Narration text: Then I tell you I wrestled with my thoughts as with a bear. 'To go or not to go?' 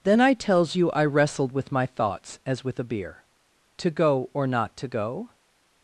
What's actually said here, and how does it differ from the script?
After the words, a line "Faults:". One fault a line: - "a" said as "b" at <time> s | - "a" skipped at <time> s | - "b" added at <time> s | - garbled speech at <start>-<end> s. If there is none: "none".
Then I tells you I wrestled with my thoughts as with a beer. 'To go or not to go?'
Faults:
- "tell" said as "tells" at 0.3 s
- "bear" said as "beer" at 2.8 s